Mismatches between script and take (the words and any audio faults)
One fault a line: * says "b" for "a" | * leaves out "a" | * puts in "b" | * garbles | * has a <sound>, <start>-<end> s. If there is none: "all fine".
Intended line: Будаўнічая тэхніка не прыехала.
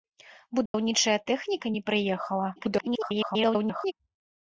* has a dropout, 0.7-0.7 s
* garbles